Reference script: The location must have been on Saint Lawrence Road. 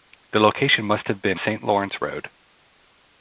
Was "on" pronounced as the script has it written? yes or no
no